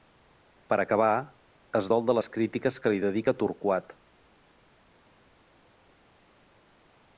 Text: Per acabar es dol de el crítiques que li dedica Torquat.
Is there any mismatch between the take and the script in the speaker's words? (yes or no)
yes